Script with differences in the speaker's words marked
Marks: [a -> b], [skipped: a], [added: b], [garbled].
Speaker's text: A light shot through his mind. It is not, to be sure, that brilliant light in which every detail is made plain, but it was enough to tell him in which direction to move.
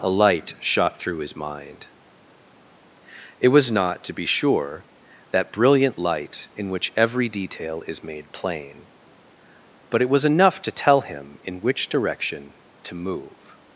A light shot through his mind. It [is -> was] not, to be sure, that brilliant light in which every detail is made plain, but it was enough to tell him in which direction to move.